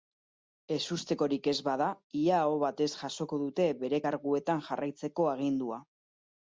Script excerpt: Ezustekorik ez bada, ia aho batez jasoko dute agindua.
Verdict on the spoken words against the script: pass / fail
fail